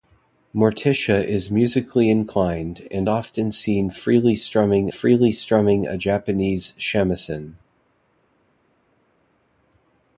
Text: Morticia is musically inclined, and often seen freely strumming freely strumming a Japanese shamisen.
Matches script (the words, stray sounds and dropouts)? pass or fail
pass